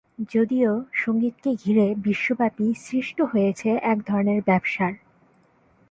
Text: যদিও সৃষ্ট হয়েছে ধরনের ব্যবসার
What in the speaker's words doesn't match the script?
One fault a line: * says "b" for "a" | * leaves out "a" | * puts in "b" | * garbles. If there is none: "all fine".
* puts in "সঙ্গীতকে ঘিরে বিশ্বব্যাপী"
* puts in "এক"